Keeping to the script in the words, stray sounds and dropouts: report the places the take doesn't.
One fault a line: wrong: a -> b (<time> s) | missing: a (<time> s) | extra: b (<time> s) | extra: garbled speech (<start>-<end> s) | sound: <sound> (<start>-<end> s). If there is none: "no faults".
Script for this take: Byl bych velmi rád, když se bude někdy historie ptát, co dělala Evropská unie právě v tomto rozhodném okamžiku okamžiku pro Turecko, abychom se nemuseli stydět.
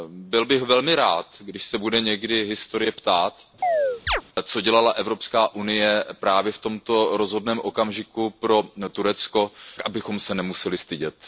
sound: chirp (3.6-4.2 s)
missing: okamžiku (8.3 s)